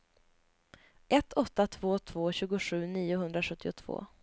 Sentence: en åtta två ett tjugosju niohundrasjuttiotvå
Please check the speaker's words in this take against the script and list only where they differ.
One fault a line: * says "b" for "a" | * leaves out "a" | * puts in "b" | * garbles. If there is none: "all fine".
* says "ett" for "en"
* says "två" for "ett"